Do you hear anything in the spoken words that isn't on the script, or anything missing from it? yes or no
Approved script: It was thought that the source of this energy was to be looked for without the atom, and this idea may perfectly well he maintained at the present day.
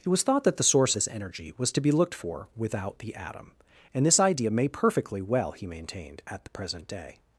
yes